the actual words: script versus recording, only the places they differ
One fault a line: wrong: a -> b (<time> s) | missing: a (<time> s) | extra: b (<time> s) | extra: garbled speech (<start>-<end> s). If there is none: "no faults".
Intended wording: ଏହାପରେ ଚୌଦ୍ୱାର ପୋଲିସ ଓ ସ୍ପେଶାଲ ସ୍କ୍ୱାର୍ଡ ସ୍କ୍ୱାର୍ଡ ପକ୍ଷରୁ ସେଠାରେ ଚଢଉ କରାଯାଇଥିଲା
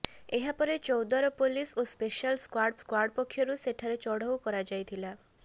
no faults